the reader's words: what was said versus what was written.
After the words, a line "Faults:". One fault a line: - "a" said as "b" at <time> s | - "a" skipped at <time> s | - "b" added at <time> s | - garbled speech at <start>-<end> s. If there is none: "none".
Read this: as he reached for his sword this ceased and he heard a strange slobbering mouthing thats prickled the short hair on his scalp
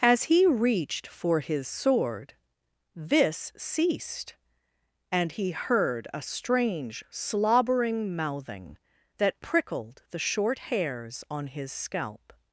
as he reached for his sword this ceased and he heard a strange slobbering mouthing that prickled the short hairs on his scalp
Faults:
- "thats" said as "that" at 9.2 s
- "hair" said as "hairs" at 10.6 s